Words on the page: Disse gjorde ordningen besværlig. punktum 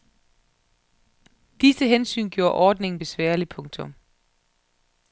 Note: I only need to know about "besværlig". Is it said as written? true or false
true